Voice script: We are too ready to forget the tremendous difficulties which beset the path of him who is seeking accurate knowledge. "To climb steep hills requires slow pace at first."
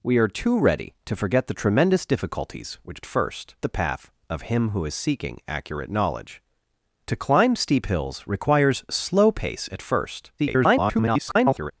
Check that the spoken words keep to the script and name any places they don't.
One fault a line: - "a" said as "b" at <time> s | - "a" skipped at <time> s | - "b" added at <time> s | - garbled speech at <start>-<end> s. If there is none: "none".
- "beset" said as "first" at 3.0 s
- garbled speech at 10.4-11.7 s